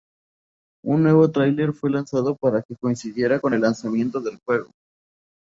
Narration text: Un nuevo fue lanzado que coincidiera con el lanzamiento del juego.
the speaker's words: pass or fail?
fail